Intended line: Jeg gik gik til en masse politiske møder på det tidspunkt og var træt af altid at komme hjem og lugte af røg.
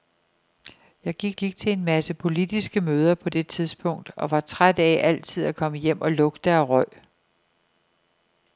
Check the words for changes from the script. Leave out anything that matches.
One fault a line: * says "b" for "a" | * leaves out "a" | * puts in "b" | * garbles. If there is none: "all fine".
all fine